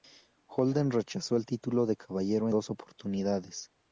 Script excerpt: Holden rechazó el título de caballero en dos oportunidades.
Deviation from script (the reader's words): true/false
true